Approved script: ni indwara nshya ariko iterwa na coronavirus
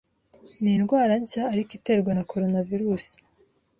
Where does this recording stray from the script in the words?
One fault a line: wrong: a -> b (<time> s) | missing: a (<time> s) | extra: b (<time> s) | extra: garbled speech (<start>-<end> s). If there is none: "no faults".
no faults